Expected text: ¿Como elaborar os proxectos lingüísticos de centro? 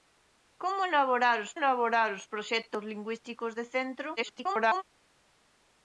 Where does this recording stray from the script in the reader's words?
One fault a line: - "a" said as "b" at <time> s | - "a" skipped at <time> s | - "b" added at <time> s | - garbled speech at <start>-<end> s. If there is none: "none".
- "elaborar os" added at 1.6 s
- garbled speech at 4.2-4.8 s